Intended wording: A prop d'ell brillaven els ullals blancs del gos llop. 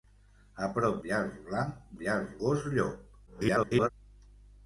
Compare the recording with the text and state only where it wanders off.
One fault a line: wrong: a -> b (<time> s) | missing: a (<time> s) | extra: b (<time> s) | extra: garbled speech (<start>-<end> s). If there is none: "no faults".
missing: d'ell brillaven els (0.9 s)
wrong: del -> ullals (2.0 s)
extra: garbled speech (3.3-3.9 s)